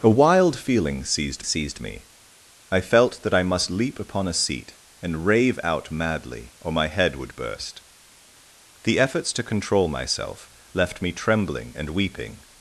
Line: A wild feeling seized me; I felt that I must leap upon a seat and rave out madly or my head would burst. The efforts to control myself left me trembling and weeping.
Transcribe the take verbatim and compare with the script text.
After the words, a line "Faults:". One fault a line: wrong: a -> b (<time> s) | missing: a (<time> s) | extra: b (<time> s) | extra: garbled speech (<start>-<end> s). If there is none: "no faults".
A wild feeling seized seized me; I felt that I must leap upon a seat and rave out madly or my head would burst. The efforts to control myself left me trembling and weeping.
Faults:
extra: seized (1.4 s)